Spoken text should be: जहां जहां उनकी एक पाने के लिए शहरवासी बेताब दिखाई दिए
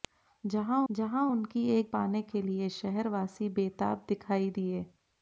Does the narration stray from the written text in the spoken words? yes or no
no